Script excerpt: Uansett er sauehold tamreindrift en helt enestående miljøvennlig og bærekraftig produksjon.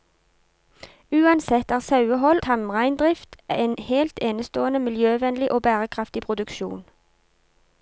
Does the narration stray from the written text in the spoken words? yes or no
no